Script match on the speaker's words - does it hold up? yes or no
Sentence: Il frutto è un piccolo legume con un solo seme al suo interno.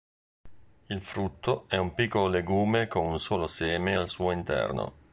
yes